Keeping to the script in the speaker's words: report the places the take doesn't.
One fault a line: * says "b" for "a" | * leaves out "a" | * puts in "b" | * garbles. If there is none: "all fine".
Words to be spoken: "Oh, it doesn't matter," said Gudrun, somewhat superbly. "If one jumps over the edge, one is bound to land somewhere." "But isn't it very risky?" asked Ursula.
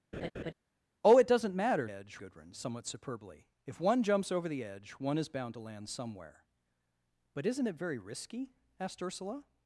* says "edge" for "said"